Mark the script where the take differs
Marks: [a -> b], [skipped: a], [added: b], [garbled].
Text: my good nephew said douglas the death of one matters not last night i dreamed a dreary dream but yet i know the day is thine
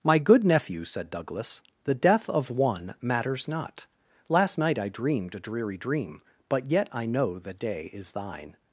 my good nephew said douglas the death of one matters not last night i dreamed a dreary dream but yet i know the day is thine